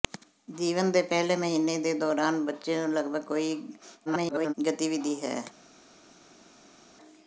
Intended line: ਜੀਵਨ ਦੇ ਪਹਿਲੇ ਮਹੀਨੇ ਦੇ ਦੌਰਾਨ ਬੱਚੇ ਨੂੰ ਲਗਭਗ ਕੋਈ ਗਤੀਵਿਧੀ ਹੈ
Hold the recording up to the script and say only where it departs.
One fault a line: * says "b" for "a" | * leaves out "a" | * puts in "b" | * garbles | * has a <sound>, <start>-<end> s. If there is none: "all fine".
* garbles